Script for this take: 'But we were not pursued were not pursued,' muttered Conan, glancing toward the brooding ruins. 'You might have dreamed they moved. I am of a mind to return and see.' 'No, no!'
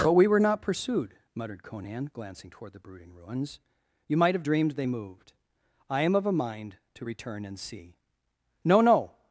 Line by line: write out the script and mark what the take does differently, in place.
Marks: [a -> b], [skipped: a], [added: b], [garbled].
'But we were not pursued [skipped: were not pursued,'] muttered Conan, glancing toward the brooding ruins. 'You might have dreamed they moved. I am of a mind to return and see.' 'No, no!'